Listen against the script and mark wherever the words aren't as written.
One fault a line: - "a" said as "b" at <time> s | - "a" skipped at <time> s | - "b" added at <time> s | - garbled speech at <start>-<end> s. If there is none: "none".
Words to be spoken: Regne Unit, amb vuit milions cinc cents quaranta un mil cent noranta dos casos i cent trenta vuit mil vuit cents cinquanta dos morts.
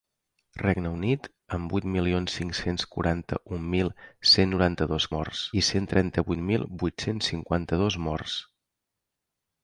- "casos" said as "morts" at 5.2 s